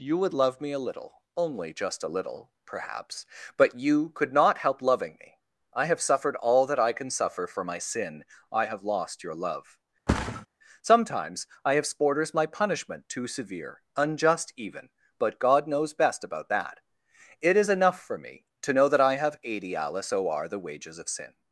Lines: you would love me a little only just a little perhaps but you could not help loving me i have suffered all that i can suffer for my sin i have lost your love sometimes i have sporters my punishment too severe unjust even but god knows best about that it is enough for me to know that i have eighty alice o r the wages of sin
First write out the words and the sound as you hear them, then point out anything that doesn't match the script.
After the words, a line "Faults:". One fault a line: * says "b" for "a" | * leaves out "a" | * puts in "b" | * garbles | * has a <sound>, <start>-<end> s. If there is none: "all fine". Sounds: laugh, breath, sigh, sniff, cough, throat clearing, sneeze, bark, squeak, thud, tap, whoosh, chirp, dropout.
you would love me a little only just a little perhaps but you could not help loving me i have suffered all that i can suffer for my sin i have lost your love sometimes i have sporters my punishment too severe unjust even but god knows best about that it is enough for me to know that i have eighty alice o r the wages of sin
Faults:
* has a thud, 10.1-10.5 s